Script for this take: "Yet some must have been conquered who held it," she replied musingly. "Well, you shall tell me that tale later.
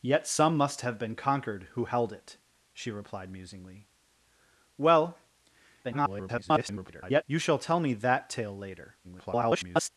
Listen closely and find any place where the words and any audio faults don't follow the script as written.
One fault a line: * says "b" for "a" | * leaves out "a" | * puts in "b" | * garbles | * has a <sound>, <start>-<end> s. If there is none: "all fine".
* garbles
* garbles